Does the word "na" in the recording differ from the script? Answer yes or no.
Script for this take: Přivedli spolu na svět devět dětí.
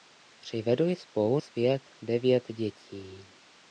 yes